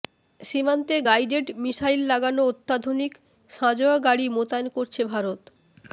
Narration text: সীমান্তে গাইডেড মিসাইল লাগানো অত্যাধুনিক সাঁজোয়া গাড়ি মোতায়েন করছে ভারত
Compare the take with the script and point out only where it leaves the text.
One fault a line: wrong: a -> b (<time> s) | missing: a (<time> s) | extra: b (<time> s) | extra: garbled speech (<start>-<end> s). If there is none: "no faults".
no faults